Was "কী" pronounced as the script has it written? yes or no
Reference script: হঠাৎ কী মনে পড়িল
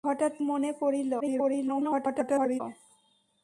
no